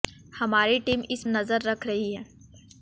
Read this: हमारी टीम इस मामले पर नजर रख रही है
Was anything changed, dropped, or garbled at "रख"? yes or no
no